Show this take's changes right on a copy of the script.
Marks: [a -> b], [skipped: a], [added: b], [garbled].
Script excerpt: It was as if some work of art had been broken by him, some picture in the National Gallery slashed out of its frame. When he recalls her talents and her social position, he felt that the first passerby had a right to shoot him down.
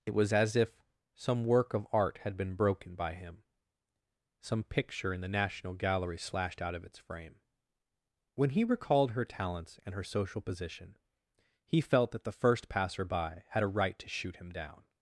It was as if some work of art had been broken by him, some picture in the National Gallery slashed out of its frame. When he [recalls -> recalled] her talents and her social position, he felt that the first passerby had a right to shoot him down.